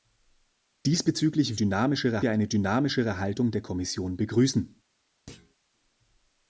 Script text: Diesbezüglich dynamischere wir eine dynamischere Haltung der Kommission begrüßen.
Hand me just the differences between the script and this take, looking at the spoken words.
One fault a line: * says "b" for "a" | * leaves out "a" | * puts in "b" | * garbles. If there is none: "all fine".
all fine